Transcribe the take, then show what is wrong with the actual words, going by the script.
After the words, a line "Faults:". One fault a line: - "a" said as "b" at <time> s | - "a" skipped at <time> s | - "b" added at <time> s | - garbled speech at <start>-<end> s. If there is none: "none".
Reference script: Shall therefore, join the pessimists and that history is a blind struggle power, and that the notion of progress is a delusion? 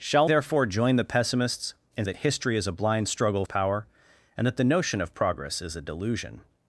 Shall therefore, join the pessimists and that history is a blind struggle power, and that the notion of progress is a delusion?
Faults:
none